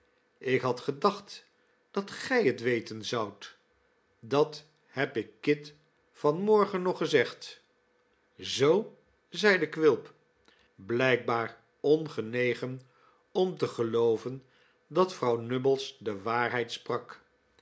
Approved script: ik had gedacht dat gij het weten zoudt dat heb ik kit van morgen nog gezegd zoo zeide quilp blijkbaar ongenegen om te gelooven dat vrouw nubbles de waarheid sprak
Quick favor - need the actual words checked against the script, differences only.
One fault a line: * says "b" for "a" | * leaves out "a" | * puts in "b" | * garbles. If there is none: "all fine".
all fine